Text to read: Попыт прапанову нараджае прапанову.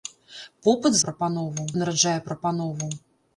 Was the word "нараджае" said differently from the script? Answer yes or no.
no